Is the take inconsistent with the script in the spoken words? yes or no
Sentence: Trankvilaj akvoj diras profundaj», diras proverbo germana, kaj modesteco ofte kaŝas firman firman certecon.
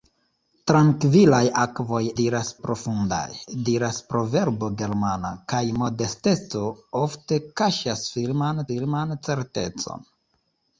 no